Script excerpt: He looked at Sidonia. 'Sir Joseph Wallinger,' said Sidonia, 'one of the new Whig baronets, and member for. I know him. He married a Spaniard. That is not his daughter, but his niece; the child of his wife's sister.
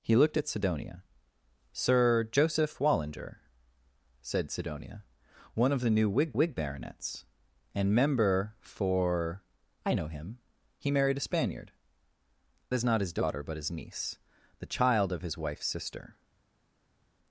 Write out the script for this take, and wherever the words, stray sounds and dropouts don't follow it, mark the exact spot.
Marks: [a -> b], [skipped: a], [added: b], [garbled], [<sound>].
He looked at Sidonia. 'Sir Joseph Wallinger,' said Sidonia, 'one of the new Whig [added: Whig] baronets, and member for. I know him. He married a Spaniard. [skipped: That] is not his daughter, but his niece; the child of his wife's sister.